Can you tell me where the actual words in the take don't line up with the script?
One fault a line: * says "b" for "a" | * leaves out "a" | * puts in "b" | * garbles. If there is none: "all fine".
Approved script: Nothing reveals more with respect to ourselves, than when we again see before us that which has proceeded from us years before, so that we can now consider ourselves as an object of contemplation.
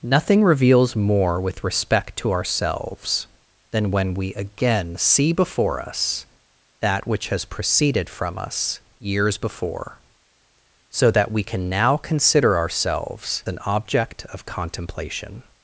* leaves out "as"